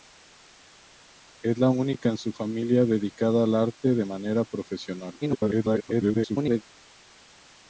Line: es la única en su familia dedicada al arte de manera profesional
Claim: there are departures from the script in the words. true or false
true